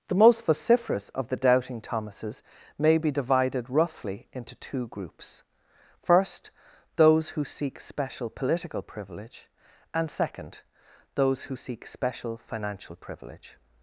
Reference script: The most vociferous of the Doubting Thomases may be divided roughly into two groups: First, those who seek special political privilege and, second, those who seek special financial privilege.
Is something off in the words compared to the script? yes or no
no